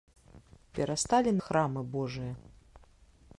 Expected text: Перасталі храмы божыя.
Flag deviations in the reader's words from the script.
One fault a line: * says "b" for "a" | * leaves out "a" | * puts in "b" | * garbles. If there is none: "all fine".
all fine